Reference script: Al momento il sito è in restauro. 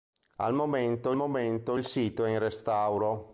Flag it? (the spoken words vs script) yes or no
yes